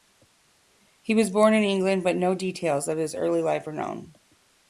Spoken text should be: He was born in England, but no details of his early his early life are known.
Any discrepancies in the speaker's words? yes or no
yes